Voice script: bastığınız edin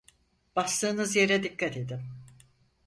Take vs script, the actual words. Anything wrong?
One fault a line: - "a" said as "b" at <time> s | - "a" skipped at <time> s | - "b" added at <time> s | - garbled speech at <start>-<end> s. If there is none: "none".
- "yere dikkat" added at 1.1 s